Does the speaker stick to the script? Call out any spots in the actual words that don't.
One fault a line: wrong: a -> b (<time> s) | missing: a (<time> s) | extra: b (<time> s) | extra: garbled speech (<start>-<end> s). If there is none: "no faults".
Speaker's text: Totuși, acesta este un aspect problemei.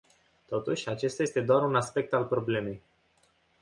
extra: doar (1.4 s)
extra: al (2.1 s)